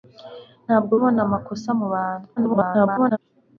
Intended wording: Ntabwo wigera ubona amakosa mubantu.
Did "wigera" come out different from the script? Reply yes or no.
yes